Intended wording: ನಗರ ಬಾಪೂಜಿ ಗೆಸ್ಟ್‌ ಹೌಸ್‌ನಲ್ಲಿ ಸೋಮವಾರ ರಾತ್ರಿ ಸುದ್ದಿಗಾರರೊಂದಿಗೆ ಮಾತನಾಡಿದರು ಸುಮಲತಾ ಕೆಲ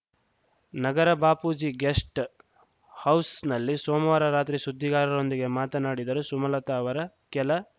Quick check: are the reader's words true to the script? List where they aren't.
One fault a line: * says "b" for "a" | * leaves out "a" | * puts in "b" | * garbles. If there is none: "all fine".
* puts in "ಅವರ"